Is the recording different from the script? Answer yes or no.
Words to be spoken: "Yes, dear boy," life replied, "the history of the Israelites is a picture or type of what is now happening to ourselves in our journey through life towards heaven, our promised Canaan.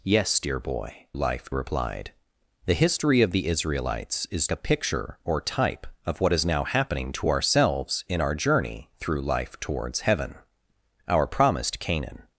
no